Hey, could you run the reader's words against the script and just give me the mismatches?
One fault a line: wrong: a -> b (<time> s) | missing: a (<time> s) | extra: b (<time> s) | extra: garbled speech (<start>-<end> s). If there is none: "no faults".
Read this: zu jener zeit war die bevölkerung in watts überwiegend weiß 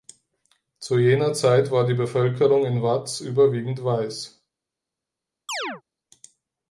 no faults